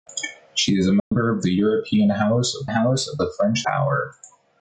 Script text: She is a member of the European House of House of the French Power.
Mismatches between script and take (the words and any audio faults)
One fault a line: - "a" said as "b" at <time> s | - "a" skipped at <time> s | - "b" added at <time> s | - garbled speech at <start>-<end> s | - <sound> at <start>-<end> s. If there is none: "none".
- dropout at 1.0-1.1 s